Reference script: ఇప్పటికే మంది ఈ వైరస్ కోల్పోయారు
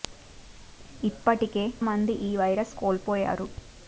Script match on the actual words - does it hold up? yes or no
yes